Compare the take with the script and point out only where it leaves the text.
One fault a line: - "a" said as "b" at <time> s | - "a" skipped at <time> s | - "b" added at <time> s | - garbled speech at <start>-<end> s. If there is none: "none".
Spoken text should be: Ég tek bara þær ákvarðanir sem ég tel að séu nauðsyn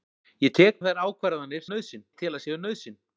- "bara" skipped at 0.8 s
- "sem" said as "nauðsyn" at 1.7 s